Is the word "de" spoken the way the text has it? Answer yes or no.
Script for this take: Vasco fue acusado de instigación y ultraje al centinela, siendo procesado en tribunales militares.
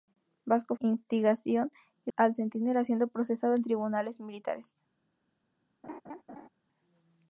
no